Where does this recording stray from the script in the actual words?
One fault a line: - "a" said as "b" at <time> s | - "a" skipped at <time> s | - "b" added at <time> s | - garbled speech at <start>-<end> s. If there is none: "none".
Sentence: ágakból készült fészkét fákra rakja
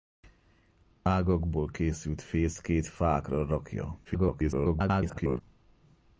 - garbled speech at 4.0-5.4 s